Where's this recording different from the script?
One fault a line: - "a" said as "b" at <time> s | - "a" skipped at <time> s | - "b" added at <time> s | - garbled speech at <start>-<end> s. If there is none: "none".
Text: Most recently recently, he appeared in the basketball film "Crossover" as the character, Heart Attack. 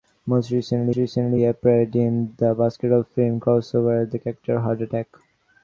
none